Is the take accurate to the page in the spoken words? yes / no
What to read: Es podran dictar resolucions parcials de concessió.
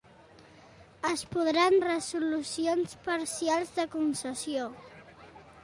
no